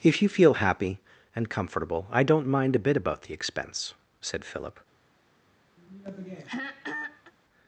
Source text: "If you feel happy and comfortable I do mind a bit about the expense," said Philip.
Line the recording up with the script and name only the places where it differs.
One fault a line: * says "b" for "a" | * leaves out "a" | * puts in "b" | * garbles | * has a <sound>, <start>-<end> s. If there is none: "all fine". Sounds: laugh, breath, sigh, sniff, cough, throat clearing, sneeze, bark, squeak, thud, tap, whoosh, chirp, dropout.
* says "don't" for "do"
* has a throat clearing, 5.8-7.3 s